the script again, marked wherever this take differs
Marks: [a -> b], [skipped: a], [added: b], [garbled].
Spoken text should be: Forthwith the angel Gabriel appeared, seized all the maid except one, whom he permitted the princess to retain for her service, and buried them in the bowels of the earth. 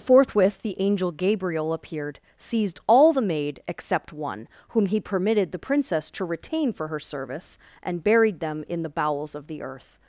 Forthwith the angel Gabriel appeared, seized all the maid except one, whom he permitted the princess to retain for her service, and buried them in the bowels of the earth.